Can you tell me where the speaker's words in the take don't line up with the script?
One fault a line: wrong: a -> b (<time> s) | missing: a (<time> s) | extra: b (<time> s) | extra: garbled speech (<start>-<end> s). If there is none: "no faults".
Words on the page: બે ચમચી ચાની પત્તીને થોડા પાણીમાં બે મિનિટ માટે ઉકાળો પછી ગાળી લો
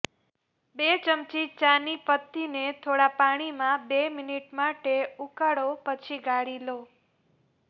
no faults